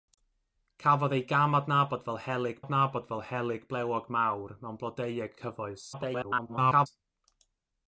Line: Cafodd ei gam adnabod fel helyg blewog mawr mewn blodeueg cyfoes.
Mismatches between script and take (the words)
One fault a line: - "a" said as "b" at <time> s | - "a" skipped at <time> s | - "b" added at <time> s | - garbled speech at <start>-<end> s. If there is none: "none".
- "adnabod fel helyg" added at 2.6 s
- garbled speech at 5.9-6.9 s